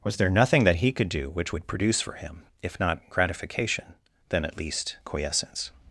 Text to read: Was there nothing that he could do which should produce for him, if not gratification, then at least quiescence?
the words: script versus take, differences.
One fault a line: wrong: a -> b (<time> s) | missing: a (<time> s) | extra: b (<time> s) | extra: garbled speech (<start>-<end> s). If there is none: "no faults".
wrong: should -> would (1.5 s)